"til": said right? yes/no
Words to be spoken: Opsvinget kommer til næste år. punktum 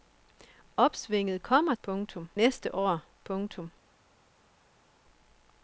no